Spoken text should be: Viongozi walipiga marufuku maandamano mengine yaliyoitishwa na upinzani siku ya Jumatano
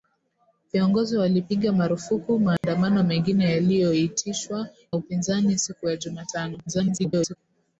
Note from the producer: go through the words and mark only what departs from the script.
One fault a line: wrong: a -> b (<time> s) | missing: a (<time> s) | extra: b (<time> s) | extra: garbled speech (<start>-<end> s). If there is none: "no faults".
missing: na (4.7 s)
extra: garbled speech (6.7-7.4 s)